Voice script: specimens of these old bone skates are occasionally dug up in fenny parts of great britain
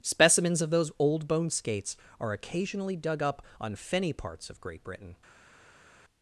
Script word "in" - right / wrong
wrong